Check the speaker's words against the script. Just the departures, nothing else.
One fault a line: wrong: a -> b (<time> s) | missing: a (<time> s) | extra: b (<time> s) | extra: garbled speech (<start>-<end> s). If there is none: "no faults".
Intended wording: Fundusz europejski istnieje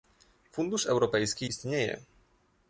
no faults